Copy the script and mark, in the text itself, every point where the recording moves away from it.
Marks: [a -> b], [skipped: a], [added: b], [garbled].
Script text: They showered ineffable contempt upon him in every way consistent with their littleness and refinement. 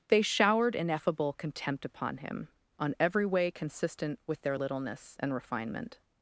They showered ineffable contempt upon him [in -> on] every way consistent with their littleness and refinement.